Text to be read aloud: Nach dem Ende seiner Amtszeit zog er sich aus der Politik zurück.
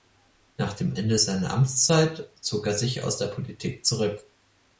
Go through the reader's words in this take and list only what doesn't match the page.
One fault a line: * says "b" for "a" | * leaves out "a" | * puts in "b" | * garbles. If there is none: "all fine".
all fine